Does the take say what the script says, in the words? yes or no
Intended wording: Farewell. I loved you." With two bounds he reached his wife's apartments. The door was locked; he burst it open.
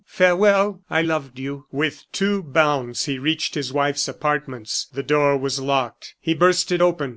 yes